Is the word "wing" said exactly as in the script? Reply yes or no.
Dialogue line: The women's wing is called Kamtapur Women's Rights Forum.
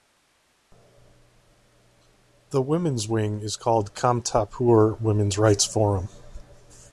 yes